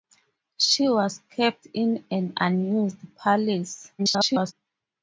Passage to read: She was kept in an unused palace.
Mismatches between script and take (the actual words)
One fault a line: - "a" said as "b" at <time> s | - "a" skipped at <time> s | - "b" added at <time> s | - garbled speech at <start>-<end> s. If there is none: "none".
- garbled speech at 4.0-4.5 s